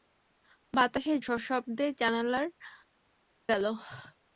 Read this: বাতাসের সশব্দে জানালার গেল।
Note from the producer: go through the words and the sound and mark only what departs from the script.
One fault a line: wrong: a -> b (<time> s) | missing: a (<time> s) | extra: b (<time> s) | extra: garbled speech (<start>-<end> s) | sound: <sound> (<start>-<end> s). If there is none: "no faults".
no faults